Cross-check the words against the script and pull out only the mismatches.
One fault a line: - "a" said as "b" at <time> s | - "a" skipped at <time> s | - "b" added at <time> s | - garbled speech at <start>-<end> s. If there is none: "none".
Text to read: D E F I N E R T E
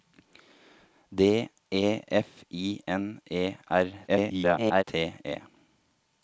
- garbled speech at 4.1-4.8 s